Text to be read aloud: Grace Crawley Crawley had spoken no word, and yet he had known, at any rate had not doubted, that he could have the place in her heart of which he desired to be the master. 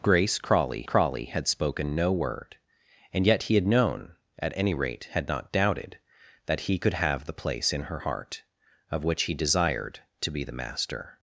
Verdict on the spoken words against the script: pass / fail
pass